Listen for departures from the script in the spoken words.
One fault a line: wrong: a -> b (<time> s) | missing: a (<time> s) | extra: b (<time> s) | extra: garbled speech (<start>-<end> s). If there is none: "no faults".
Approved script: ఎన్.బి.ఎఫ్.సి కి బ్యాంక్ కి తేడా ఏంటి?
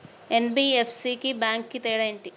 no faults